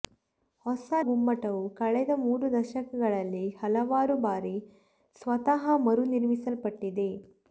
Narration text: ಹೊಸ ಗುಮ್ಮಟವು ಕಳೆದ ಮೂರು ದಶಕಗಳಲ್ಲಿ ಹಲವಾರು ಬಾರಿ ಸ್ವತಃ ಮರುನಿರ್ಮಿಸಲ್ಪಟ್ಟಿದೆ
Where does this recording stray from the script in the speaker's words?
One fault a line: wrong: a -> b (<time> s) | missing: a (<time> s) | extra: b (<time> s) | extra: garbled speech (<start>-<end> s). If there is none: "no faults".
no faults